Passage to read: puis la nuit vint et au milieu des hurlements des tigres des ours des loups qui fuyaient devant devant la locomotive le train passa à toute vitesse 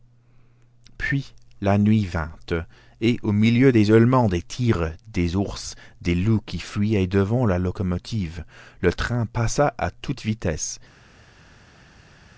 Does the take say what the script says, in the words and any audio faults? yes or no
no